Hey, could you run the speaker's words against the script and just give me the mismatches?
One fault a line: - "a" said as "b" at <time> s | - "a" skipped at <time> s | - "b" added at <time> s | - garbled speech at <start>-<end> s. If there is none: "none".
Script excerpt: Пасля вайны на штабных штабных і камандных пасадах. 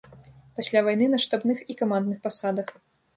- "штабных" skipped at 1.6 s